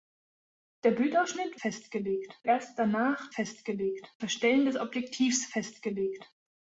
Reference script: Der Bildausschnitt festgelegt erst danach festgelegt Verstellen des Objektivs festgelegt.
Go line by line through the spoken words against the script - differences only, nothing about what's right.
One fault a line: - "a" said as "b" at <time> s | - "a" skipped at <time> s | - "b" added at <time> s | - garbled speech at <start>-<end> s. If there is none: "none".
none